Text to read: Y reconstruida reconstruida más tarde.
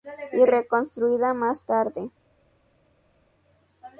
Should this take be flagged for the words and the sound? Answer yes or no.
yes